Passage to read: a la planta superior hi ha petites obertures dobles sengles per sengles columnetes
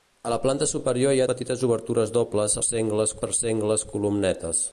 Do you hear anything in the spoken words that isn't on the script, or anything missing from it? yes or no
no